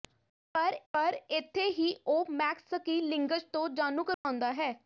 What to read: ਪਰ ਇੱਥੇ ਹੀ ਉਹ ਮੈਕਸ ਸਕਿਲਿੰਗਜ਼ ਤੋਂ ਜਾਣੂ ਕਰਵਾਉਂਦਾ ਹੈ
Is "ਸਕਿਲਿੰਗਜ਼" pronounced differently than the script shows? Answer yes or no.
no